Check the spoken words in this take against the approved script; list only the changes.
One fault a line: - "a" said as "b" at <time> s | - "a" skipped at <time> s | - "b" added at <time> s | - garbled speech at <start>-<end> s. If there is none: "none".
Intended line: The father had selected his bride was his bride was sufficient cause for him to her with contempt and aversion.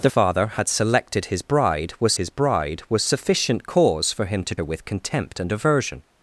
none